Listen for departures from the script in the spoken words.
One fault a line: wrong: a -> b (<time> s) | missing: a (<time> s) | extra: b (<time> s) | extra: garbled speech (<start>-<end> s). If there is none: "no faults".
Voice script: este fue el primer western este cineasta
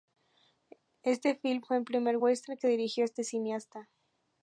extra: film (1.4 s)
extra: que dirigió (2.6 s)